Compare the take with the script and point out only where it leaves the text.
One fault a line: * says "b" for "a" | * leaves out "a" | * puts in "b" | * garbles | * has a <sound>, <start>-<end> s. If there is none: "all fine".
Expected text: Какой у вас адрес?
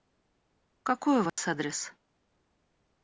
* has a dropout, 1.3-1.4 s